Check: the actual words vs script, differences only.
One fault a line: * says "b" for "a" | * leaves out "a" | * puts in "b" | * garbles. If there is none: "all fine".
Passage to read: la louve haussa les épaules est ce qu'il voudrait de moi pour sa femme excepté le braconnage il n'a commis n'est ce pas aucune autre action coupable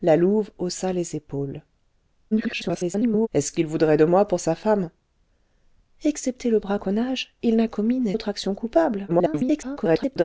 * garbles
* leaves out "ce pas aucune"
* garbles